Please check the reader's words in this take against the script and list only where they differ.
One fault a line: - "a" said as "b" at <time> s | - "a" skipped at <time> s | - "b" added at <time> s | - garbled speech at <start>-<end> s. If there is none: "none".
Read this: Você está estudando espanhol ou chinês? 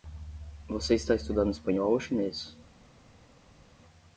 none